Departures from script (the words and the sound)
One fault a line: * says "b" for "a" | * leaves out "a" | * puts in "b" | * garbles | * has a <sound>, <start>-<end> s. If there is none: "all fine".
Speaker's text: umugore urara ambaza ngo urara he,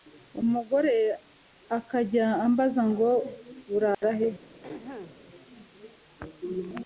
* says "akajya" for "urara"
* has a dropout, 3.9-4.0 s
* has a throat clearing, 4.6-5.2 s